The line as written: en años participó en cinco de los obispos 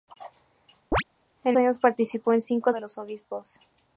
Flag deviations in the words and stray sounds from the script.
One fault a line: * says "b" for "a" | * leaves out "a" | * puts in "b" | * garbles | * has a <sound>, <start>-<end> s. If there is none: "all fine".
* has a chirp, 0.9-1.0 s